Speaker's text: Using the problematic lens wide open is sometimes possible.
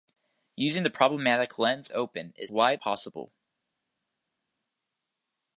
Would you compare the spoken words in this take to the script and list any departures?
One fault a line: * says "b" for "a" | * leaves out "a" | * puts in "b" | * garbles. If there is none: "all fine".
* leaves out "wide"
* says "wide" for "sometimes"